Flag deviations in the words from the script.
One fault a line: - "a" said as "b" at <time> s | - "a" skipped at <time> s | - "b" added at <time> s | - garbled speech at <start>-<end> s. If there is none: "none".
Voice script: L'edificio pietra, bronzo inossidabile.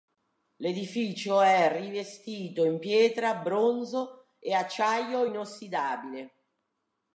- "è rivestito in" added at 1.4 s
- "e acciaio" added at 4.4 s